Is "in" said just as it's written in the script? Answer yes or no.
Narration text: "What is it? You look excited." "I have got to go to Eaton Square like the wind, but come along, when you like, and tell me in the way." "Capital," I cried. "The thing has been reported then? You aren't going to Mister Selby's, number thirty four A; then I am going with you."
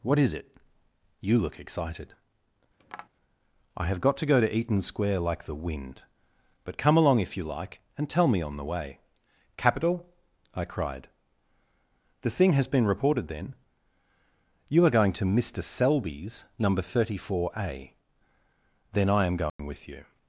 no